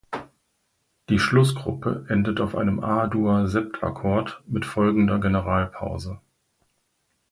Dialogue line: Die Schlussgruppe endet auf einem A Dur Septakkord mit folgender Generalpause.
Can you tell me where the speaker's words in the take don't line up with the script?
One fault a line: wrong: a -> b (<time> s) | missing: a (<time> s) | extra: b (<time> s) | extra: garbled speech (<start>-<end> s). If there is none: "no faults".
no faults